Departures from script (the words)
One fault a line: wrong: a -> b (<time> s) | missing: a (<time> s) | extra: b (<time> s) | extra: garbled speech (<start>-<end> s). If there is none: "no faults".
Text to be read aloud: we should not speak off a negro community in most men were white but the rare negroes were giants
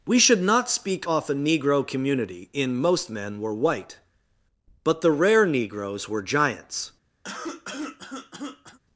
no faults